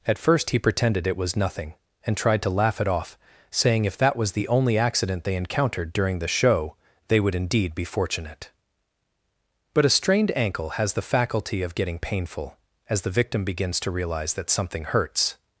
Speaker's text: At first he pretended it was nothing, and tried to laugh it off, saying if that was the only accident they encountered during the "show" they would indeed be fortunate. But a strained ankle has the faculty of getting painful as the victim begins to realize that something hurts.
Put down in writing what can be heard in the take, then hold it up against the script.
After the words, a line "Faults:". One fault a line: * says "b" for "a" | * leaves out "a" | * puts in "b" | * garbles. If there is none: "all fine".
At first he pretended it was nothing, and tried to laugh it off, saying if that was the only accident they encountered during the "show" they would indeed be fortunate. But a strained ankle has the faculty of getting painful as the victim begins to realize that something hurts.
Faults:
all fine